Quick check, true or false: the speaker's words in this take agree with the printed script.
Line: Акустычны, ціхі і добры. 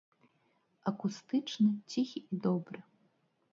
true